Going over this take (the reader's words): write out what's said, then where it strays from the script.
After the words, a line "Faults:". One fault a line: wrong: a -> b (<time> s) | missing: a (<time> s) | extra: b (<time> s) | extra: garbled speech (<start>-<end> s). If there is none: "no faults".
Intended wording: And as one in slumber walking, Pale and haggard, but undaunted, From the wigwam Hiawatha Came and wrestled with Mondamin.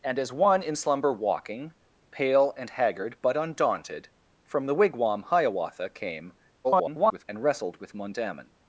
And as one in slumber walking, Pale and haggard, but undaunted, From the wigwam Hiawatha Came [garbled] and wrestled with Mondamin.
Faults:
extra: garbled speech (6.6-7.2 s)